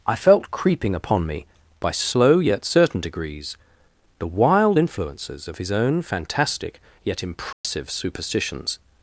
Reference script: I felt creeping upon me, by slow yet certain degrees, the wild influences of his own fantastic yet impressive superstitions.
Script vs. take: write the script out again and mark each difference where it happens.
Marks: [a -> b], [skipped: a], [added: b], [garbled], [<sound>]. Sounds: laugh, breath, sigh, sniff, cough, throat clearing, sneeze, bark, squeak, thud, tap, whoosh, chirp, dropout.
I felt creeping upon me, by slow yet certain degrees, the wild influences of his own fantastic yet impressive [dropout] superstitions.